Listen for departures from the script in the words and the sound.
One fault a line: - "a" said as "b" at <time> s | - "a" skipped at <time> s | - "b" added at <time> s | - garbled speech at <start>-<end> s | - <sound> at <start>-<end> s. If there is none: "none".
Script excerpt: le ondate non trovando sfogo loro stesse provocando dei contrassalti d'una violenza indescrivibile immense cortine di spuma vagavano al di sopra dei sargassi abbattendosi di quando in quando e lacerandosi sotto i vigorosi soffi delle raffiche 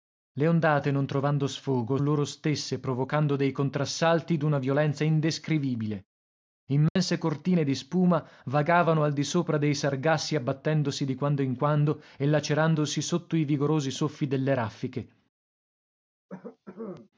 - dropout at 6.9-7.0 s
- cough at 16.3-17.1 s